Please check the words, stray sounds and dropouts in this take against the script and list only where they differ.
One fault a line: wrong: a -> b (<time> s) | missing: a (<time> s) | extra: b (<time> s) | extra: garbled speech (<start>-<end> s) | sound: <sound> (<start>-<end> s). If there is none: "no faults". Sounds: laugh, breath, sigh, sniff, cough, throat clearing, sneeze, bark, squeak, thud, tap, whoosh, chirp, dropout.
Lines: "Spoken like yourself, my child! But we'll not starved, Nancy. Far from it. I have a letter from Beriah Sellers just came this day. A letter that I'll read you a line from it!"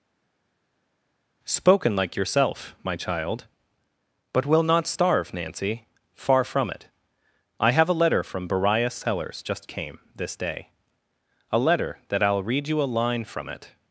wrong: starved -> starve (4.9 s)